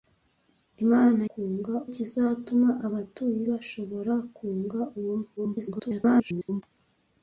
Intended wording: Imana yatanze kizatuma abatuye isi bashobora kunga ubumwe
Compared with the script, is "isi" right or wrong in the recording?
wrong